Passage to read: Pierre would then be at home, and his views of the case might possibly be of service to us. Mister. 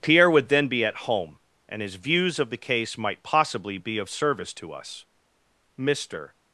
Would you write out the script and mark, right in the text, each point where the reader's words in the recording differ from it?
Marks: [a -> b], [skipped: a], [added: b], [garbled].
Pierre would then be at home, and his views of the case might possibly be of service to us. Mister.